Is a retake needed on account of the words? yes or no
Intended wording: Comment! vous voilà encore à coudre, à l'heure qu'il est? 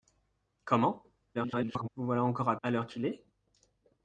yes